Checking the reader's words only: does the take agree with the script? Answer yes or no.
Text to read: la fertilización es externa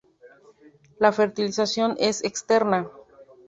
yes